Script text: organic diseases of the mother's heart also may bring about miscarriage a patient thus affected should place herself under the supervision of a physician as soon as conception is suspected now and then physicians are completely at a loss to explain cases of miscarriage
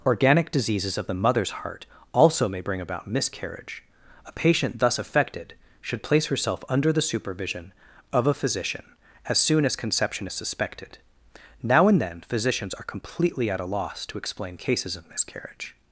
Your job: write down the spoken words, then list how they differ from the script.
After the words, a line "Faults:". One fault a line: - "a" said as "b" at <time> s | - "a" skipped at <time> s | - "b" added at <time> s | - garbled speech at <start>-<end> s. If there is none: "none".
organic diseases of the mother's heart also may bring about miscarriage a patient thus affected should place herself under the supervision of a physician as soon as conception is suspected now and then physicians are completely at a loss to explain cases of miscarriage
Faults:
none